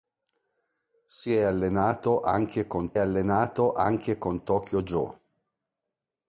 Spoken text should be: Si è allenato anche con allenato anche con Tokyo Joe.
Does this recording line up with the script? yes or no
yes